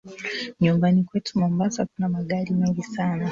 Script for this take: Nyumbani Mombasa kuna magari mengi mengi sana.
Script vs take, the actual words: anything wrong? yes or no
yes